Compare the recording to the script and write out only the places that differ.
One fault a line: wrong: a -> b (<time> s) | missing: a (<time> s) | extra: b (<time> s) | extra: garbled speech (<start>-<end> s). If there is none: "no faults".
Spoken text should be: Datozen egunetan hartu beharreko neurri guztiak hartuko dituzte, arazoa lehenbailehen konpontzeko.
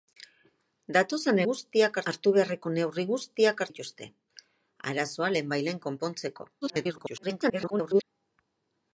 wrong: egunetan -> guztiak (1.5 s)
missing: hartuko (3.7 s)
extra: garbled speech (6.6-8.0 s)